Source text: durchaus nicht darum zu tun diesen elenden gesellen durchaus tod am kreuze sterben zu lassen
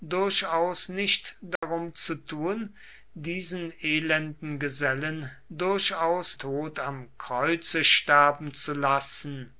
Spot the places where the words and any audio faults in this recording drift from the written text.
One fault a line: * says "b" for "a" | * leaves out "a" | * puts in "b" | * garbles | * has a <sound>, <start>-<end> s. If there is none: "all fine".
* has a dropout, 1.6-1.6 s